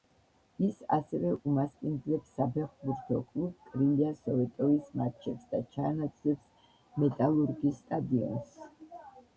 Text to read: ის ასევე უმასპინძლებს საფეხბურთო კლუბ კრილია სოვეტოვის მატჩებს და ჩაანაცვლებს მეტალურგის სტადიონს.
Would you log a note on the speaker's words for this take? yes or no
no